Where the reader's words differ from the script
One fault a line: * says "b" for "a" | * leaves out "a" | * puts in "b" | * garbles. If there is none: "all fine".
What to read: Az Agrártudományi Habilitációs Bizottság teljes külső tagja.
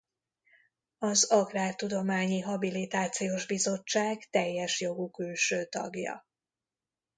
* puts in "jogú"